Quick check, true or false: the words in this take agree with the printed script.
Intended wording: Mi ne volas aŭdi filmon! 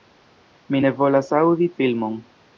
true